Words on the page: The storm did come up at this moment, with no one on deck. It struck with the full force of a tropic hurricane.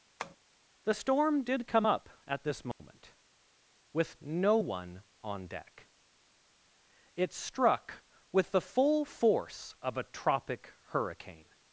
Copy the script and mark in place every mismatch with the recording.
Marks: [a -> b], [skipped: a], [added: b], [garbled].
The storm did come up at this moment, with no one on deck. It struck with the full force of a tropic hurricane.